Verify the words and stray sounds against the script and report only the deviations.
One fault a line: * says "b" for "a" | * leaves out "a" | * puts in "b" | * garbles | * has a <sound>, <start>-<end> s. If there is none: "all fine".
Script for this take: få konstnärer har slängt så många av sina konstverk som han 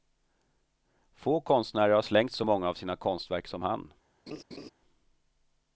* has a laugh, 4.3-4.7 s